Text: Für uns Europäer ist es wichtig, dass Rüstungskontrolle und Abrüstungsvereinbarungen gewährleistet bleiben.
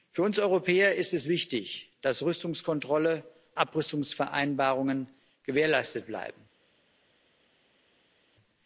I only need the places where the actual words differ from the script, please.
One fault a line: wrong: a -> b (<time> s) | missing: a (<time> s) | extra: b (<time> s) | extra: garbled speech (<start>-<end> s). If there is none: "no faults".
missing: und (3.2 s)